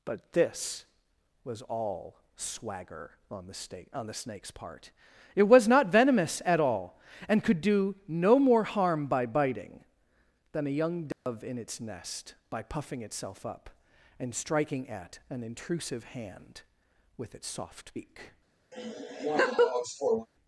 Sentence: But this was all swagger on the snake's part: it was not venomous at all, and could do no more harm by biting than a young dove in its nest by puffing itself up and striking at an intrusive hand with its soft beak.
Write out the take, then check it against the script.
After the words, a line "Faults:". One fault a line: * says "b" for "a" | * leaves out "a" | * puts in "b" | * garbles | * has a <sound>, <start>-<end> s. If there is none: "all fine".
But this was all swagger on the snake on the snake's part: it was not venomous at all, and could do no more harm by biting than a young dove in its nest by puffing itself up and striking at an intrusive hand with its soft beak.
Faults:
* puts in "snake on the"
* has a dropout, 11.1-11.3 s
* has a laugh, 18.7-20.3 s